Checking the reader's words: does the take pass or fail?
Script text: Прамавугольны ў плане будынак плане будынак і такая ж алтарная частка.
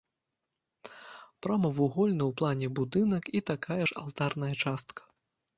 fail